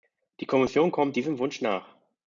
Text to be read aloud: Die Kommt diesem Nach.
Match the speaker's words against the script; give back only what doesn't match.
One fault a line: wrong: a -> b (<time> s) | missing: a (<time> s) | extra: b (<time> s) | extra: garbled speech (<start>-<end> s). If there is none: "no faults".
extra: Kommission (0.5 s)
extra: Wunsch (1.4 s)